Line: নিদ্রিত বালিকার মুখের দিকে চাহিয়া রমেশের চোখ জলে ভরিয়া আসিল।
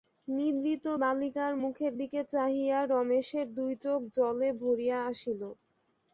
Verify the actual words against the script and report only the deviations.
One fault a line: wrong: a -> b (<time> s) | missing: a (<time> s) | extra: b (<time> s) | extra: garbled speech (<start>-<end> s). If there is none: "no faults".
extra: দুই (3.6 s)